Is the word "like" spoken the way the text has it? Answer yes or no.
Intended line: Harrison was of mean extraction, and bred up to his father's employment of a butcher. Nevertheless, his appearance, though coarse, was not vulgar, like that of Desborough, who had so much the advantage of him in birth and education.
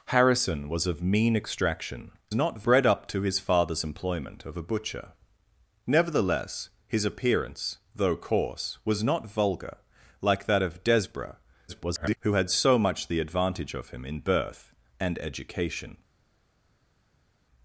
yes